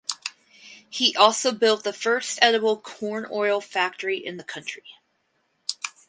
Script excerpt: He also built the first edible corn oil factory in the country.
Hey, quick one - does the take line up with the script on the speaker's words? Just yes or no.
yes